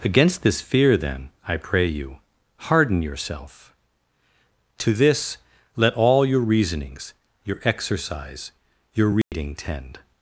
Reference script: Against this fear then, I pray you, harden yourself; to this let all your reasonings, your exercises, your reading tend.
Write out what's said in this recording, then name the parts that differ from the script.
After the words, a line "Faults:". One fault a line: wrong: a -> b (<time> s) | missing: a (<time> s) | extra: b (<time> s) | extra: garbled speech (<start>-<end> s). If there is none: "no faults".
Against this fear then, I pray you, harden yourself; to this let all your reasonings, your exercise, your reading tend.
Faults:
wrong: exercises -> exercise (7.7 s)